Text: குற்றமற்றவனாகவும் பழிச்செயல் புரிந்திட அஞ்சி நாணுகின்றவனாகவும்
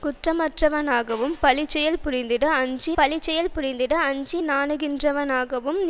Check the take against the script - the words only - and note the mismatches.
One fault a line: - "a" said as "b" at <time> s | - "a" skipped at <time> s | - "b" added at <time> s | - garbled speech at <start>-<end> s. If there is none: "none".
- "பழிச்செயல் புரிந்திட அஞ்சி" added at 3.0 s